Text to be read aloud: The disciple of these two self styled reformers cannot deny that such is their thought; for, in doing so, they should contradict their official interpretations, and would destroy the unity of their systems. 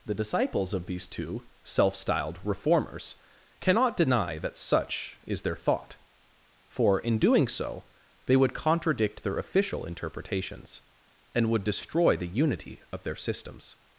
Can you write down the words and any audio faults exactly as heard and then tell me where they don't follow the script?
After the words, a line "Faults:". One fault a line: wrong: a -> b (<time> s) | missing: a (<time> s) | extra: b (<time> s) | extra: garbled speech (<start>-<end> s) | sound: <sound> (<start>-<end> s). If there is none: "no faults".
The disciples of these two self styled reformers cannot deny that such is their thought; for, in doing so, they would contradict their official interpretations, and would destroy the unity of their systems.
Faults:
wrong: disciple -> disciples (0.1 s)
wrong: should -> would (8.4 s)